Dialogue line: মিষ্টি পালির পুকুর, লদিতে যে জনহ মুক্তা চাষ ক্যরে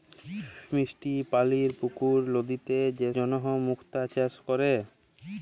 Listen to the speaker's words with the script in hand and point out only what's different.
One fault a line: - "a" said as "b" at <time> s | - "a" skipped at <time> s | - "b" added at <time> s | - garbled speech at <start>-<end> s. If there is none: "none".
none